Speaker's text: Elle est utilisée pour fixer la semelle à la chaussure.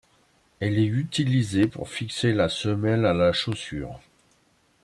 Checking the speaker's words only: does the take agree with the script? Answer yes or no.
yes